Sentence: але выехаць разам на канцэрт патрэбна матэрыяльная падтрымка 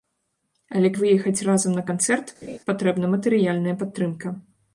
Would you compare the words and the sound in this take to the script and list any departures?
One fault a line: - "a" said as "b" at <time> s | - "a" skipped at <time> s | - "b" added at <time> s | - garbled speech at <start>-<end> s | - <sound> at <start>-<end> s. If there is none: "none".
- laugh at 2.4-2.6 s